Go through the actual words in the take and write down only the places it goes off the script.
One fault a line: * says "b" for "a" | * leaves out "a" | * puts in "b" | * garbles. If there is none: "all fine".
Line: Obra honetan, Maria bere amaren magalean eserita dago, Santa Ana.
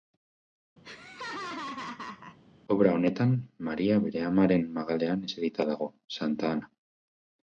all fine